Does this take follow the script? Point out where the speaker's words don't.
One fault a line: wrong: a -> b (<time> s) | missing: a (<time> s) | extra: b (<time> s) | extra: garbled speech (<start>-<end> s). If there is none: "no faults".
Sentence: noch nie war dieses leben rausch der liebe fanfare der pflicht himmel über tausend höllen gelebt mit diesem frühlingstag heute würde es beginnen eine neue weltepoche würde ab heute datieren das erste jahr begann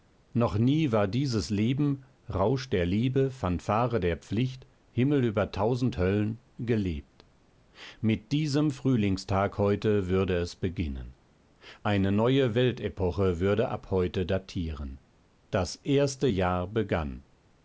no faults